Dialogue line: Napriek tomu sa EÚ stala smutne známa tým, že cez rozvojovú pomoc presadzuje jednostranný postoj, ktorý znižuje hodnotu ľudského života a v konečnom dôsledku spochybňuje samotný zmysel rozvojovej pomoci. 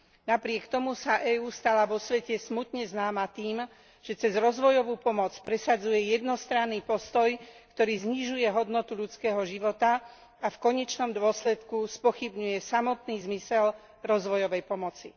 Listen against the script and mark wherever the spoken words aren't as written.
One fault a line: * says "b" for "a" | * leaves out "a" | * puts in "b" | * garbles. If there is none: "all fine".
* puts in "vo svete"